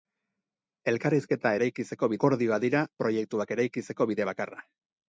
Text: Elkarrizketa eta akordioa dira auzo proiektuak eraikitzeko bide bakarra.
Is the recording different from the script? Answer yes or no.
yes